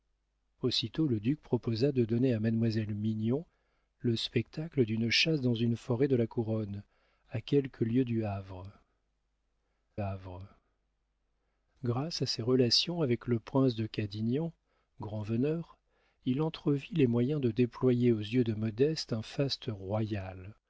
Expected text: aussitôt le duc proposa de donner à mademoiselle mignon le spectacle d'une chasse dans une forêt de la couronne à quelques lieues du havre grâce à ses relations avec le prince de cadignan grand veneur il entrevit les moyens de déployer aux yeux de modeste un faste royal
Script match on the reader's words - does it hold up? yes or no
no